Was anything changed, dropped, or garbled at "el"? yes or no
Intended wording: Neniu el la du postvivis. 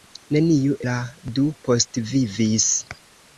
yes